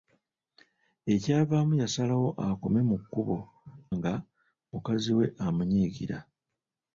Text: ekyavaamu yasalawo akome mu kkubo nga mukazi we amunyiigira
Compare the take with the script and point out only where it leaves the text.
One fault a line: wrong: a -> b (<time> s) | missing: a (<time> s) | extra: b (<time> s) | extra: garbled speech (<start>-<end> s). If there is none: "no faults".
no faults